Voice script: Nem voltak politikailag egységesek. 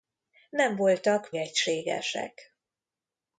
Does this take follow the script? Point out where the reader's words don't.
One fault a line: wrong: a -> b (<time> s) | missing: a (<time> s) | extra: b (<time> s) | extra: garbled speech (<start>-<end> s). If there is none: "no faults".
missing: politikailag (1.3 s)